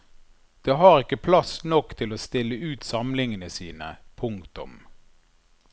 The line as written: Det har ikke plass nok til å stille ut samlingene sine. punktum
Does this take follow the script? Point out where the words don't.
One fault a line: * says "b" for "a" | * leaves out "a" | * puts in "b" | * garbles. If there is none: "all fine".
all fine